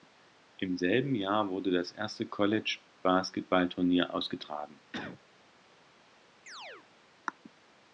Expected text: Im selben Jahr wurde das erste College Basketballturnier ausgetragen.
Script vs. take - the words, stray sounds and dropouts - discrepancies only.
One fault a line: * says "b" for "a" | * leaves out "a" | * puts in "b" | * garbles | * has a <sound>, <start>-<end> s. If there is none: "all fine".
* has a cough, 4.9-5.2 s
* has a chirp, 6.5-6.9 s